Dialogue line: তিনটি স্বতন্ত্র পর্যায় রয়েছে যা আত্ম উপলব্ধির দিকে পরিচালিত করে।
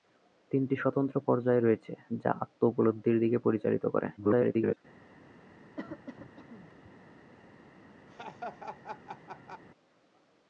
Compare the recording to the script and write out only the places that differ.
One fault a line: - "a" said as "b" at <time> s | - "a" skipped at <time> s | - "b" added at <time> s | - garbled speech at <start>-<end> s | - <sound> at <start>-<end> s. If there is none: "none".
- garbled speech at 4.2-4.8 s
- cough at 5.8-6.9 s
- laugh at 8.1-9.6 s